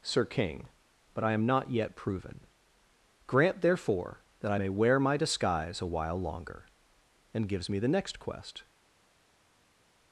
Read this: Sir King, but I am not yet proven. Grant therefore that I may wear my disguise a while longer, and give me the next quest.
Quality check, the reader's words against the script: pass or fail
fail